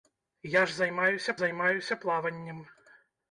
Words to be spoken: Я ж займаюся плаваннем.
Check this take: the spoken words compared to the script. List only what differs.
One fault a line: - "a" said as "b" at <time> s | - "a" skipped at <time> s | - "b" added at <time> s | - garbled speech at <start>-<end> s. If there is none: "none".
- "займаюся" added at 1.3 s